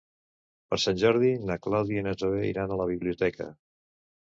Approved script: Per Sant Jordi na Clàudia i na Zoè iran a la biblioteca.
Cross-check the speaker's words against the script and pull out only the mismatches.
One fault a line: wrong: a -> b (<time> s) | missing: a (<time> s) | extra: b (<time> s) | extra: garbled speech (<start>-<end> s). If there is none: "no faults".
no faults